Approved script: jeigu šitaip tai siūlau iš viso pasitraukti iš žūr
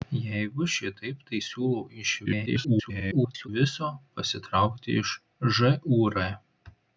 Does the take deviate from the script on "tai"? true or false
false